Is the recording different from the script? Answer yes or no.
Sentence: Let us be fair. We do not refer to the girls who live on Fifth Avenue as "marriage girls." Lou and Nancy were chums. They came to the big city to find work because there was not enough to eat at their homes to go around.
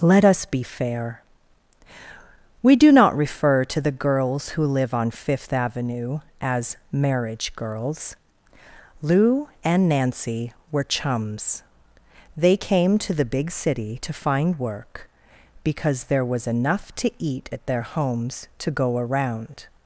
yes